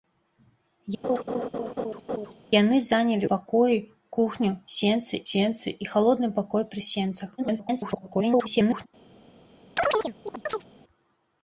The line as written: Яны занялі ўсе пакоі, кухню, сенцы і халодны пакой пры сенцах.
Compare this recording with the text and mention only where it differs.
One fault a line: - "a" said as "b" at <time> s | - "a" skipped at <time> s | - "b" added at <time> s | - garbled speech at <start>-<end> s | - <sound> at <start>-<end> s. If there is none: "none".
- laugh at 1.0-2.3 s
- "ўсе" skipped at 3.3 s
- "сенцы" added at 5.3 s
- garbled speech at 7.4-8.9 s
- chirp at 9.8-10.7 s